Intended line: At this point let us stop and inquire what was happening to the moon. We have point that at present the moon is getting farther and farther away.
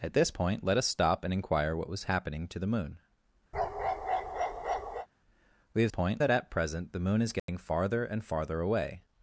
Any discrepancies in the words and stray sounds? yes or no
yes